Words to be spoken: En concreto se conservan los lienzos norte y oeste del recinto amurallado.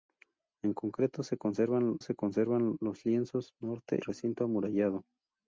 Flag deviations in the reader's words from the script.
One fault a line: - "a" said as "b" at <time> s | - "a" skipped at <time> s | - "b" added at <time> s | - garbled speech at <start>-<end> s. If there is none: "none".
- "se conservan" added at 2.0 s
- "y oeste del" skipped at 4.0 s